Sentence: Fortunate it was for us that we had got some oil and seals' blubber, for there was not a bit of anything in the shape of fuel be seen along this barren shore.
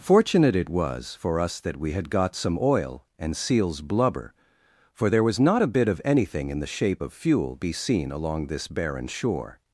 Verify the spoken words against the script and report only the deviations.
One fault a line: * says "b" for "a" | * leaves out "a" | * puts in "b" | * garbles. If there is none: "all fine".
all fine